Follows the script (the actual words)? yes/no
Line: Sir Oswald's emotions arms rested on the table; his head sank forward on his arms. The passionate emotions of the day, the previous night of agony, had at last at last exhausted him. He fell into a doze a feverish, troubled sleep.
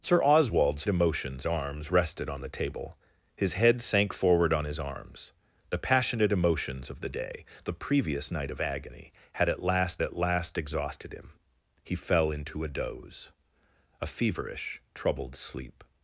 yes